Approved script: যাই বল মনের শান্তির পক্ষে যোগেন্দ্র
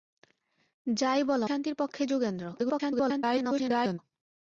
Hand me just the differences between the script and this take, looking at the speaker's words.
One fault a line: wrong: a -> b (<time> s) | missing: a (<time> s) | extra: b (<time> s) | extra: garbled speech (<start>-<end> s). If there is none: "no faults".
missing: মনের (1.4 s)
extra: garbled speech (2.5-4.0 s)